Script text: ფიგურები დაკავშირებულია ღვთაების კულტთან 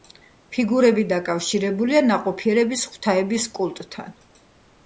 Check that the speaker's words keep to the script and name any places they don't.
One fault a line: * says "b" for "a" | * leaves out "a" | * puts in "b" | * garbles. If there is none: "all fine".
* puts in "ნაყოფიერების"